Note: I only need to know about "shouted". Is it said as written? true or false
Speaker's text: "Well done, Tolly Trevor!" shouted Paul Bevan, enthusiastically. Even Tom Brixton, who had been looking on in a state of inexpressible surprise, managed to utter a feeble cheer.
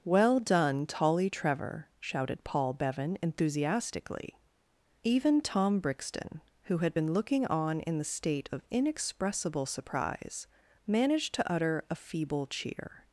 true